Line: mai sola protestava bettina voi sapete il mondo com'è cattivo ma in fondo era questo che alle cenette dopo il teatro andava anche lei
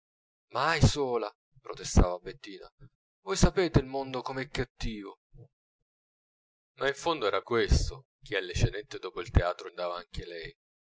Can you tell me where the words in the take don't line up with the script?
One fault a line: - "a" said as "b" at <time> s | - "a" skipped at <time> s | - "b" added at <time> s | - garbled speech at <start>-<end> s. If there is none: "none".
none